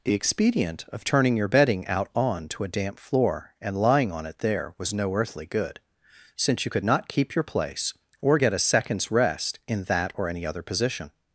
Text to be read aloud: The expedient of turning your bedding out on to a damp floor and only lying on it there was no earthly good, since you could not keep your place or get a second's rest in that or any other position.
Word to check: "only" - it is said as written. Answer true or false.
false